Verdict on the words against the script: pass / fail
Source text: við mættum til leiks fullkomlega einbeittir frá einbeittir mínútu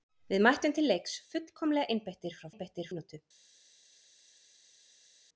pass